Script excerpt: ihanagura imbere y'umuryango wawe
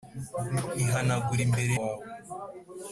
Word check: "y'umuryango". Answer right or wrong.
wrong